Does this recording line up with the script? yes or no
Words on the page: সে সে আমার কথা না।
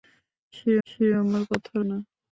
yes